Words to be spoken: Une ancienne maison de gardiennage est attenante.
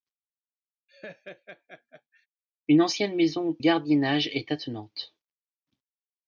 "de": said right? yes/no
no